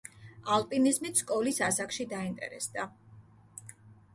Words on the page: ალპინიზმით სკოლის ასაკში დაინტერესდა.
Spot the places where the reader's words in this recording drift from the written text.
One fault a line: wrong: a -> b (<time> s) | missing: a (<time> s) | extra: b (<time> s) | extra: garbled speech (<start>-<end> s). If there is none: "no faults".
no faults